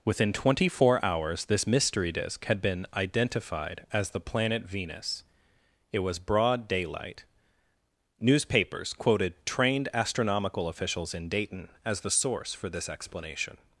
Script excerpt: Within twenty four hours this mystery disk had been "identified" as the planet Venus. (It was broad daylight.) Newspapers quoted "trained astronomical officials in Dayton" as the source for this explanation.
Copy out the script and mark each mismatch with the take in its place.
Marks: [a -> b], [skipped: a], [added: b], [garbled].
Within twenty four hours this mystery disk had been "identified" as the planet Venus. (It was broad daylight.) Newspapers quoted "trained astronomical officials in Dayton" as the source for this explanation.